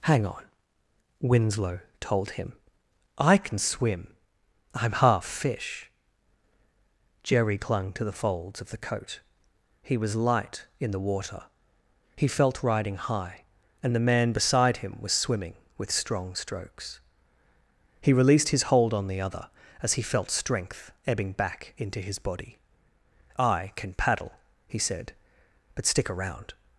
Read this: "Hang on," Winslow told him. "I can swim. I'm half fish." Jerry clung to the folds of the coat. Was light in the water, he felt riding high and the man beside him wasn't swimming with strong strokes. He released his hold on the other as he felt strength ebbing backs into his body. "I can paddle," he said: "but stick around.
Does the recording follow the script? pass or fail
fail